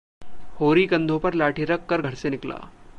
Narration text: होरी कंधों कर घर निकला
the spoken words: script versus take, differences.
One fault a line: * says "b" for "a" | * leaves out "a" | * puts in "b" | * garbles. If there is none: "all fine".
* puts in "पर लाठी रख"
* puts in "से"